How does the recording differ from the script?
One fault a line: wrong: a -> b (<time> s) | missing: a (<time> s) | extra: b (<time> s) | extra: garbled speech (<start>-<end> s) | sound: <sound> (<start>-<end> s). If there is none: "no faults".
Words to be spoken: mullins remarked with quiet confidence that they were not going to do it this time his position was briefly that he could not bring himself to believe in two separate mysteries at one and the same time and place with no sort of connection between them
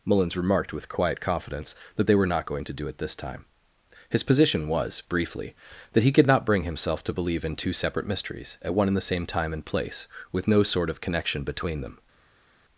no faults